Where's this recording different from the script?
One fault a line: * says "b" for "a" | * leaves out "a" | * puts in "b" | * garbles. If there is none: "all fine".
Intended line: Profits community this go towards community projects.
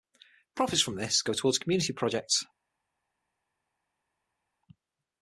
* says "from" for "community"